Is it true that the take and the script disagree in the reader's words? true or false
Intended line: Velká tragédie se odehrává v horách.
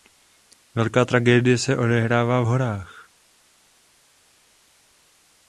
false